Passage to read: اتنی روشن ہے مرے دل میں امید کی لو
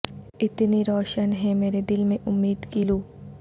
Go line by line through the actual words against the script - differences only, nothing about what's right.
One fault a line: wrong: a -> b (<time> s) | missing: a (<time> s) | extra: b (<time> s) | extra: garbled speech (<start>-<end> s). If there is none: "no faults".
no faults